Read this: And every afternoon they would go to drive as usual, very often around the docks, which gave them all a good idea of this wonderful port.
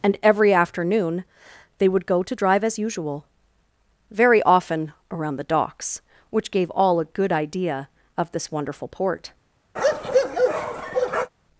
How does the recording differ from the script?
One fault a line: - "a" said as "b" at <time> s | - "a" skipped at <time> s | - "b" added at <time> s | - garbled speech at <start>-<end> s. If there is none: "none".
- "them" skipped at 6.7 s